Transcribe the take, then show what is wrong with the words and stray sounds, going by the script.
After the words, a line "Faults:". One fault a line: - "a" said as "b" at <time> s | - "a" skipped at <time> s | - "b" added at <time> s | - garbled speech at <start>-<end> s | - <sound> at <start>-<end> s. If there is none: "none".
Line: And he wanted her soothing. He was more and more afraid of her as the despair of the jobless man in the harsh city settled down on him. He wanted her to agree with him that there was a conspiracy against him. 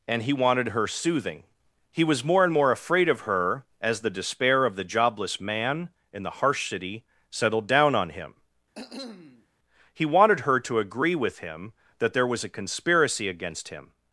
And he wanted her soothing. He was more and more afraid of her as the despair of the jobless man in the harsh city settled down on him. He wanted her to agree with him that there was a conspiracy against him.
Faults:
- cough at 8.7-9.5 s